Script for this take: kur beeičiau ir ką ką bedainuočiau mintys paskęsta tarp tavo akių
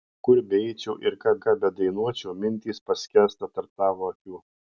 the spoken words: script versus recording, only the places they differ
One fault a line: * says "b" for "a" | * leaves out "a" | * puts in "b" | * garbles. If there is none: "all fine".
all fine